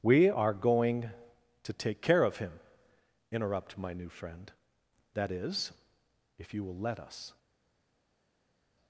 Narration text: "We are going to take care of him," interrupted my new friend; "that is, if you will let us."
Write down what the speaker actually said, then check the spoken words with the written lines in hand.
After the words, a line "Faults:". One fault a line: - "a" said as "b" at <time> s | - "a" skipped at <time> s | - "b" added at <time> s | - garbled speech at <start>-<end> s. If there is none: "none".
"We are going to take care of him," interrupt my new friend; "that is, if you will let us."
Faults:
- "interrupted" said as "interrupt" at 3.3 s